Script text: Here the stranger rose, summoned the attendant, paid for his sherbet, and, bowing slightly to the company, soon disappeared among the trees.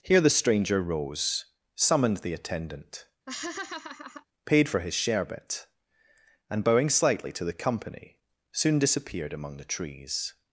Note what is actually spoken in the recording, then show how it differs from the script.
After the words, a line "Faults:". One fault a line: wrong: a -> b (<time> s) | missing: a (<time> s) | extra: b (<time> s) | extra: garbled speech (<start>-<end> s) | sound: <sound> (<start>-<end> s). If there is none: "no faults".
Here the stranger rose, summoned the attendant, paid for his sherbet, and, bowing slightly to the company, soon disappeared among the trees.
Faults:
sound: laugh (3.3-4.3 s)